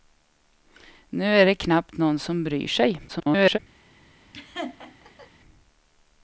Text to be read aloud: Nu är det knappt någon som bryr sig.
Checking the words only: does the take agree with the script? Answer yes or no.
no